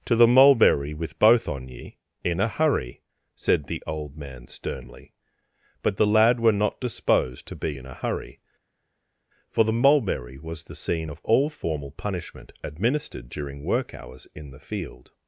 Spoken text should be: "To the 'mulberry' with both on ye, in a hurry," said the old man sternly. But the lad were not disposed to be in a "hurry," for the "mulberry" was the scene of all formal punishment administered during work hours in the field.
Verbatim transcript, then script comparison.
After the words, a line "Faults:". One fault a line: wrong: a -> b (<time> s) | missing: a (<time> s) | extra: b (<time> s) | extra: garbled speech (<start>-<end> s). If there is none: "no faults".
"To the 'mulberry' with both on ye, in a hurry," said the old man sternly. But the lad were not disposed to be in a "hurry," for the "mulberry" was the scene of all formal punishment administered during work hours in the field.
Faults:
no faults